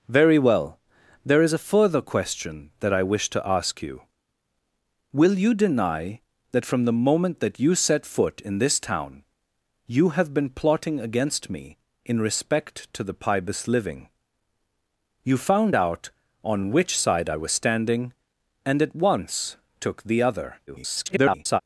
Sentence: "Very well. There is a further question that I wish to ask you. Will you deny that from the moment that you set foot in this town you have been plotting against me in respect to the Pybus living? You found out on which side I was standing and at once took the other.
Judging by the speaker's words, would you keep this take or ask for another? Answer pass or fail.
fail